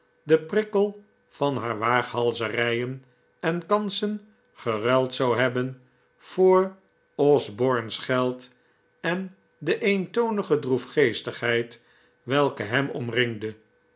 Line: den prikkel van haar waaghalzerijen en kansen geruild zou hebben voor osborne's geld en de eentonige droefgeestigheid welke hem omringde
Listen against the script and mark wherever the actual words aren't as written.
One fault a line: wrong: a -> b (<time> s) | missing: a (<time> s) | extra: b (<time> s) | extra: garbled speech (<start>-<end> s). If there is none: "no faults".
no faults